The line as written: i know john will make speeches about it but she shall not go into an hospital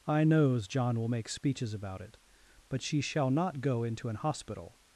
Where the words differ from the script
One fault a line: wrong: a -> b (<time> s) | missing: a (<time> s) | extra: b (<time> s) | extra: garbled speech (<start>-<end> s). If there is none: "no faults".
wrong: know -> knows (0.2 s)